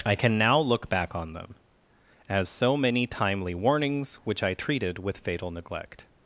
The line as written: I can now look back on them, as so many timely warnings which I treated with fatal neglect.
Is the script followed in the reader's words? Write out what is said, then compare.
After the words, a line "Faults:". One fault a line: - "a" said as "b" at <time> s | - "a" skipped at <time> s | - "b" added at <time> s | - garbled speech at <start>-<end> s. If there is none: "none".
I can now look back on them, as so many timely warnings which I treated with fatal neglect.
Faults:
none